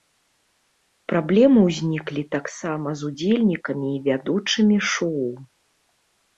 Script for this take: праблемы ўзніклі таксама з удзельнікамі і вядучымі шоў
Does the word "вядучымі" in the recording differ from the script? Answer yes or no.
no